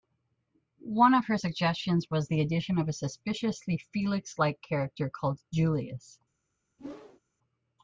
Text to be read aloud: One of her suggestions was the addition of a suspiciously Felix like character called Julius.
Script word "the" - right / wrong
right